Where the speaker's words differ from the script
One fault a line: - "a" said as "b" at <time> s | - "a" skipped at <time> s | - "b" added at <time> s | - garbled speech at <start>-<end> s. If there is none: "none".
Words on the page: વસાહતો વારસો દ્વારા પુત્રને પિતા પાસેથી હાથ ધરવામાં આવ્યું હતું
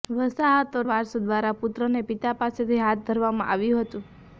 none